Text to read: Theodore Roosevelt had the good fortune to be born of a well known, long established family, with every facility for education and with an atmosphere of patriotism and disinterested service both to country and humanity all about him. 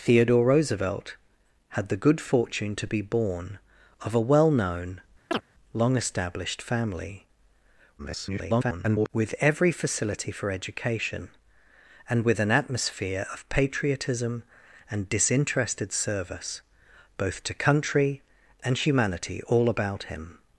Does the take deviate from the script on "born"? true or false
false